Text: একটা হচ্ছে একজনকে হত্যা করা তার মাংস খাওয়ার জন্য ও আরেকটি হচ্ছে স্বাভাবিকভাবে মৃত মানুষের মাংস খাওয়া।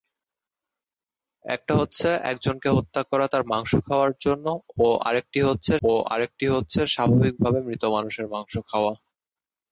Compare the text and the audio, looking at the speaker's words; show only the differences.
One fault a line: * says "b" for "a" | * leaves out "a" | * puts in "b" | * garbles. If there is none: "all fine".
* puts in "ও আরেকটি হচ্ছে"